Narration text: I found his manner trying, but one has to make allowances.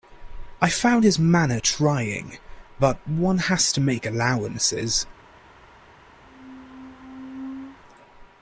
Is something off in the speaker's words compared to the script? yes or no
no